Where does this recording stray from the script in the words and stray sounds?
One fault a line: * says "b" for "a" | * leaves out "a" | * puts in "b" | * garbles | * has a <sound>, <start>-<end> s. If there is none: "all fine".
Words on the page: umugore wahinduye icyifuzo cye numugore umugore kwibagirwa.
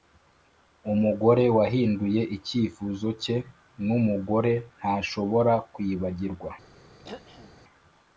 * says "ntashobora" for "umugore"
* has a throat clearing, 7.0-7.6 s